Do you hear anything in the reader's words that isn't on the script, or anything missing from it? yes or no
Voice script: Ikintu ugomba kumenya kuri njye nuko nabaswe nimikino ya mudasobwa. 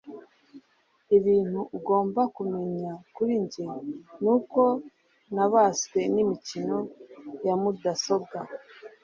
no